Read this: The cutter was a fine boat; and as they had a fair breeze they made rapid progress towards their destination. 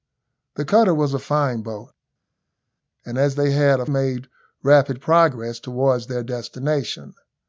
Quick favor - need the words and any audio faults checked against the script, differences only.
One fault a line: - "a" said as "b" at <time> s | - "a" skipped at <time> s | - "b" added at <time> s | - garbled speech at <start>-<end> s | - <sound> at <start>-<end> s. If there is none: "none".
- "fair breeze they" skipped at 3.8 s